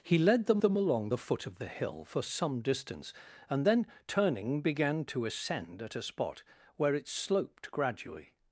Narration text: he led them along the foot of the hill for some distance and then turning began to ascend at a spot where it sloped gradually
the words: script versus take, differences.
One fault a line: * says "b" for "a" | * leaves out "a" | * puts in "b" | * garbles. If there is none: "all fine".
* puts in "them"